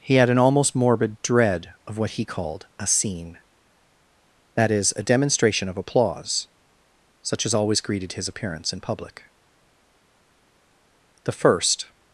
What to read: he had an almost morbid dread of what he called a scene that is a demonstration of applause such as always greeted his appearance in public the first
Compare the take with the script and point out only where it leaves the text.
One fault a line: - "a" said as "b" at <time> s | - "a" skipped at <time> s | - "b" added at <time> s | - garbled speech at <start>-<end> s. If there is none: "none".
none